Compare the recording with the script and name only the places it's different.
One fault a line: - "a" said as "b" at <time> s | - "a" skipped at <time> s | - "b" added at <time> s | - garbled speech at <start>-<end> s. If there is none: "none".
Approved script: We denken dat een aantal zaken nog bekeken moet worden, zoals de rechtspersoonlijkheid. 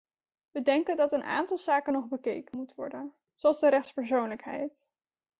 none